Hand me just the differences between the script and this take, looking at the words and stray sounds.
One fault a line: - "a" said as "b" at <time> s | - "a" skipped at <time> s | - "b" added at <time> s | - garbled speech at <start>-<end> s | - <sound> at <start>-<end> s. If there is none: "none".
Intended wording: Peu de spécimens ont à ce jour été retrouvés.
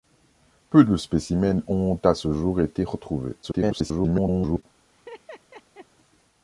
- garbled speech at 3.4-4.6 s
- laugh at 4.9-5.9 s